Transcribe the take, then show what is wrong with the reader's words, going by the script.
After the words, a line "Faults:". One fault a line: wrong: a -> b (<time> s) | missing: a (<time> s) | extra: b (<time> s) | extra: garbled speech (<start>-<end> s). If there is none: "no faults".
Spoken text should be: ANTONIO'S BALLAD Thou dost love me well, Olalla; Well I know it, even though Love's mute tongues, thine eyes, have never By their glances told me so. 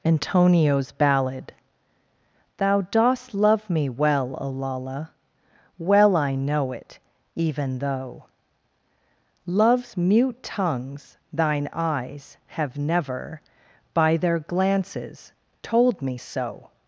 ANTONIO'S BALLAD Thou dost love me well, Olalla; Well I know it, even though Love's mute tongues, thine eyes, have never By their glances told me so.
Faults:
no faults